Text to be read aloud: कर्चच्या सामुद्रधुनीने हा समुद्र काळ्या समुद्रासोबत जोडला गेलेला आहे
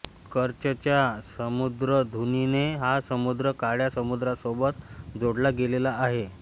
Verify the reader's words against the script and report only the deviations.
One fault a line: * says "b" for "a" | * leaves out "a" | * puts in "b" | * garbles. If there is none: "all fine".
all fine